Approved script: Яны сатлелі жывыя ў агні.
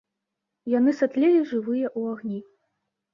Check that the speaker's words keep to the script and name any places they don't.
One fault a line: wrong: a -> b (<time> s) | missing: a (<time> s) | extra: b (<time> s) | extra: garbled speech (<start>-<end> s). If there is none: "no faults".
no faults